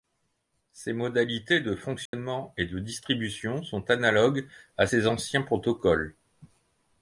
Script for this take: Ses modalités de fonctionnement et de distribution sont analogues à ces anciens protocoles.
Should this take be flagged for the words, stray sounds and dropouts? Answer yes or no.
yes